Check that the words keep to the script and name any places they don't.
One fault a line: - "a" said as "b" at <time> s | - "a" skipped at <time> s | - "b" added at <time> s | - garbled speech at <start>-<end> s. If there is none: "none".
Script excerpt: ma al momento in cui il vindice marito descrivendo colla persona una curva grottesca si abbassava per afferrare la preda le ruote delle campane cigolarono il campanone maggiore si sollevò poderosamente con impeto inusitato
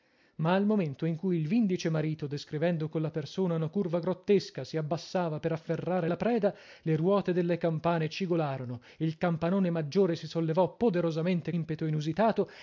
- "con" skipped at 11.5 s